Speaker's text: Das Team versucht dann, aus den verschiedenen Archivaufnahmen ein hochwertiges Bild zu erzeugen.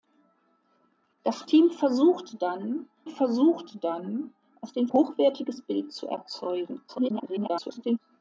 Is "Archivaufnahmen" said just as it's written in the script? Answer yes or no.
no